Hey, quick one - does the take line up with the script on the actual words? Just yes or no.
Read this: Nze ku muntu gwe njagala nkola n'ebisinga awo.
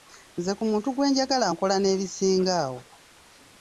yes